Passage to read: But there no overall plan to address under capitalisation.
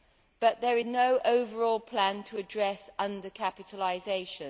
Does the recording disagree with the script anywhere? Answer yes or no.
no